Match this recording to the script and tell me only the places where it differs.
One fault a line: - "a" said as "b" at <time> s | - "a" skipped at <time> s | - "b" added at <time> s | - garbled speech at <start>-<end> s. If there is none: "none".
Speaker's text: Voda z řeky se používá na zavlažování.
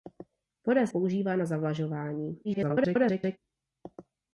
- "řeky se" skipped at 0.9 s
- garbled speech at 2.4-3.4 s